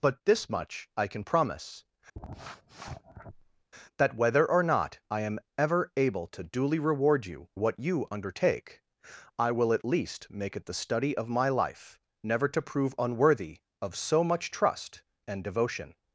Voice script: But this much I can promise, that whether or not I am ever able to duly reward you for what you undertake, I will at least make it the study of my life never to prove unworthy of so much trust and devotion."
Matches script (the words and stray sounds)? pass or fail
fail